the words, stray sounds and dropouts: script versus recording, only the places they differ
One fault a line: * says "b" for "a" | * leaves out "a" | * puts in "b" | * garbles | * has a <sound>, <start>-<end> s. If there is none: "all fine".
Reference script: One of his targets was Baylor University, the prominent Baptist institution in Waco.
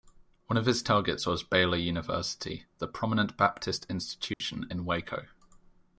* has a dropout, 4.3-4.4 s